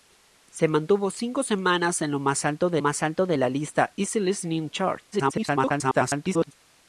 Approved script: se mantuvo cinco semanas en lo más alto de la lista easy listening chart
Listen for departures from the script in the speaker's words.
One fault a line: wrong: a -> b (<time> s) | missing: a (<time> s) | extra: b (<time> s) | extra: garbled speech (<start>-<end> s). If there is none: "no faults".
extra: más alto de (2.8 s)
extra: garbled speech (5.1-6.5 s)